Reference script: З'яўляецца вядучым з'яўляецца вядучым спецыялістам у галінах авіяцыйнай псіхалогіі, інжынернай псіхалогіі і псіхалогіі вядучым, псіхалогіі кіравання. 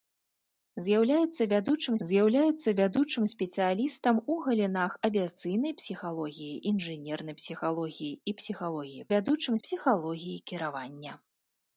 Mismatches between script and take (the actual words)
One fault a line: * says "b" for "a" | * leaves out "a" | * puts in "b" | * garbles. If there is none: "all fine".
all fine